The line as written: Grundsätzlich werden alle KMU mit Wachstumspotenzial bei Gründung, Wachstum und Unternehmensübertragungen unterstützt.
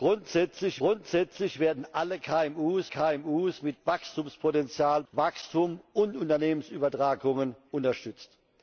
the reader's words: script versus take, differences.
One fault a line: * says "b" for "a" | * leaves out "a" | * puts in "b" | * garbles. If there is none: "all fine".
* puts in "grundsätzlich"
* puts in "KMU"
* leaves out "bei Gründung"